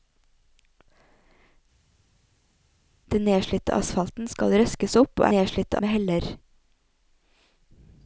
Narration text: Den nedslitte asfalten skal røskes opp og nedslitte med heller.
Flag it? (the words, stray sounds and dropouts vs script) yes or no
no